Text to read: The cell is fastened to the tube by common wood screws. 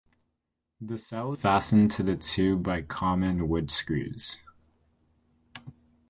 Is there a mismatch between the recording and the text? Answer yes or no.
yes